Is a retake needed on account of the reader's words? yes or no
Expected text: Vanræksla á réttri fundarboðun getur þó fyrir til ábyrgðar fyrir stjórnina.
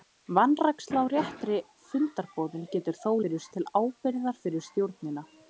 no